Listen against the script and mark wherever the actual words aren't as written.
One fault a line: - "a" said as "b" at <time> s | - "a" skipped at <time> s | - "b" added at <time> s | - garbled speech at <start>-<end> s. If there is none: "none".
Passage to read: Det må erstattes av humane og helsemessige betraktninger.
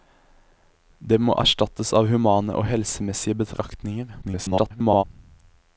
- garbled speech at 4.2-5.0 s